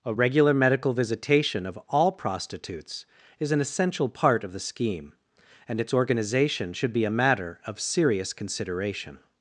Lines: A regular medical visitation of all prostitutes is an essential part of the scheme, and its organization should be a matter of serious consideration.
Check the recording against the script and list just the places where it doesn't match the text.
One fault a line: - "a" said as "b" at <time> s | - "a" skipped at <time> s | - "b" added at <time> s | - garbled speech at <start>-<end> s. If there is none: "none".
none